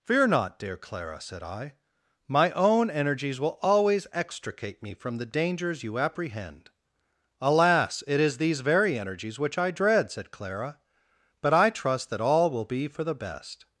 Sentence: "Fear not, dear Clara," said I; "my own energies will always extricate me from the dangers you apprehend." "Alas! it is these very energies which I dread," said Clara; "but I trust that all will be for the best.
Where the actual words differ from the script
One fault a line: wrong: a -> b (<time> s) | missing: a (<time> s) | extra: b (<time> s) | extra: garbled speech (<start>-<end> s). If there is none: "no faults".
no faults